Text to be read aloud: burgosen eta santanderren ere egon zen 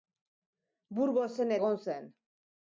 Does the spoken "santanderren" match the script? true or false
false